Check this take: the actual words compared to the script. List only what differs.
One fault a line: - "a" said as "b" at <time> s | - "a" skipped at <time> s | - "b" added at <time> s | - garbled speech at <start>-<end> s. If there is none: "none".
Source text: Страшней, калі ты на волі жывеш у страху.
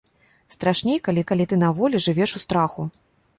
- "калі" added at 1.3 s